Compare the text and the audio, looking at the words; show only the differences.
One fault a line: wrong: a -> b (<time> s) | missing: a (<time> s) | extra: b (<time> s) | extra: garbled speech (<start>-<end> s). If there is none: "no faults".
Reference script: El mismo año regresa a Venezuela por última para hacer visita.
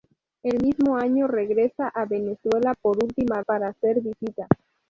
no faults